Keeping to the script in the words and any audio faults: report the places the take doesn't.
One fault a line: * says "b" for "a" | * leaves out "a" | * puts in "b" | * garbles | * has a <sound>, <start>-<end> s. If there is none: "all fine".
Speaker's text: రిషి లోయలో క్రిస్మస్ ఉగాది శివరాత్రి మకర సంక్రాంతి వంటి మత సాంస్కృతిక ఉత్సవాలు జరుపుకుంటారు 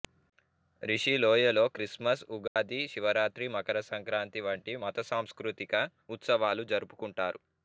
* has a dropout, 2.5-2.6 s